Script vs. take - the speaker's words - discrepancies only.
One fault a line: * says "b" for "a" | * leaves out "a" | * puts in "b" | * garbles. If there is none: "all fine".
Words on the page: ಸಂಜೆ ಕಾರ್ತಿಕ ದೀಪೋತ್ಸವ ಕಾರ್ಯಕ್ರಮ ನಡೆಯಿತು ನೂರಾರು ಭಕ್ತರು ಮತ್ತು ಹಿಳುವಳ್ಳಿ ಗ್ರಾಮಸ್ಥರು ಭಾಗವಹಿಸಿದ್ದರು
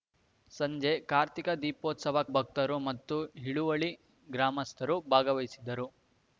* leaves out "ಕಾರ್ಯಕ್ರಮ ನಡೆಯಿತು ನೂರಾರು"